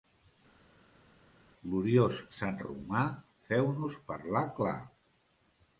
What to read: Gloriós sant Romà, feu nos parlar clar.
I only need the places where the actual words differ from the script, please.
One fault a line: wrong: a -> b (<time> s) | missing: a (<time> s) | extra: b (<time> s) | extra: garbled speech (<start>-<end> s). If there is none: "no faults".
no faults